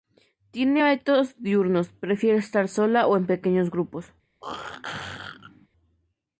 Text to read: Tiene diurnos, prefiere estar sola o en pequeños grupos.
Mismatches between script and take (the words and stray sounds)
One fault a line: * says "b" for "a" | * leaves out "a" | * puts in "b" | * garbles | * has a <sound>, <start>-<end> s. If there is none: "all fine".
* puts in "hábitos"
* has a throat clearing, 4.4-5.7 s